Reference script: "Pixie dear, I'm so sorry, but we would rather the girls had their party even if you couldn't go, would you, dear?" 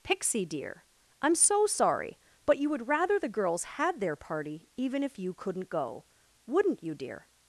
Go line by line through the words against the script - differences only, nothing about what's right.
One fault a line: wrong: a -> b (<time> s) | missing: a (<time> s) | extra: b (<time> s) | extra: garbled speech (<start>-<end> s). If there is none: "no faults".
wrong: we -> you (2.6 s)
wrong: would -> wouldn't (6.5 s)